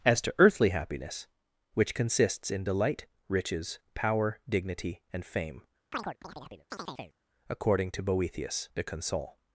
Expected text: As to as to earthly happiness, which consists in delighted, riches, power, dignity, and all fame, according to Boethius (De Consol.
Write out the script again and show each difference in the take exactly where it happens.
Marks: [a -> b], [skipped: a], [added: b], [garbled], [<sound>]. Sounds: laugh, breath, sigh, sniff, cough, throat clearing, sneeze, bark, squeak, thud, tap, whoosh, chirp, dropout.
As to [skipped: as to] earthly happiness, which consists in [delighted, -> delight] riches, power, dignity, and [skipped: all] fame, [chirp] according to Boethius (De Consol.